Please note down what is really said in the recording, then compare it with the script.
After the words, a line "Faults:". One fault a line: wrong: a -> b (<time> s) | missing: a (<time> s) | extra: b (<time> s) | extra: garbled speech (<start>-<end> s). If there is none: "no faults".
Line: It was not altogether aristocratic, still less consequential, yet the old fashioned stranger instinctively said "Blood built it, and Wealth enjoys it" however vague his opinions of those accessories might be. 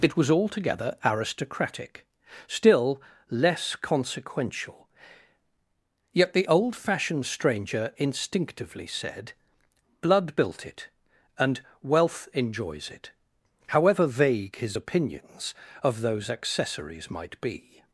It was altogether aristocratic, still less consequential, yet the old fashioned stranger instinctively said "Blood built it, and Wealth enjoys it" however vague his opinions of those accessories might be.
Faults:
missing: not (0.3 s)